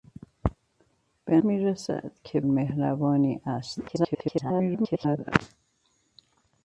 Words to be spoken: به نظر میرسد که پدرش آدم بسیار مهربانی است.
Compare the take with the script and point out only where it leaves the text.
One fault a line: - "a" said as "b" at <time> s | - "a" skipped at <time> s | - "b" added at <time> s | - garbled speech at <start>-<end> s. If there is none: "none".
- "نظر" skipped at 1.4 s
- "پدرش آدم بسیار" skipped at 2.4 s
- garbled speech at 3.9-5.3 s